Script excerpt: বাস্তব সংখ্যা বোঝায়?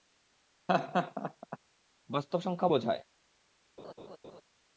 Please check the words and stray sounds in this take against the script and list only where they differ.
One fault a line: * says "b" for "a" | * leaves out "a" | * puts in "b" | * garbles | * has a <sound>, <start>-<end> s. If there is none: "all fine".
* has a laugh, 0.7-1.6 s
* has a laugh, 3.8-4.4 s